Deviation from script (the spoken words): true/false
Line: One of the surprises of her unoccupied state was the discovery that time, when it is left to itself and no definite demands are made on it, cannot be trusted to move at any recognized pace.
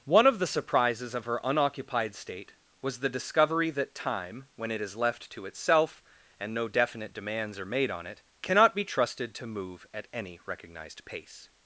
false